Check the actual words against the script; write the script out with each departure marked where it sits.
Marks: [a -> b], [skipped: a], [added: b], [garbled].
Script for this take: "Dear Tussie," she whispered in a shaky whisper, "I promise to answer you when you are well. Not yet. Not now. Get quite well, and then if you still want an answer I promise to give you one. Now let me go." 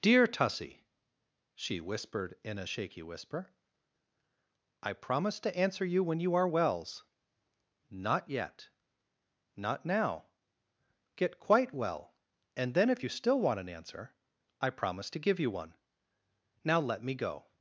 "Dear Tussie," she whispered in a shaky whisper, "I promise to answer you when you are [well. -> wells] Not yet. Not now. Get quite well, and then if you still want an answer I promise to give you one. Now let me go."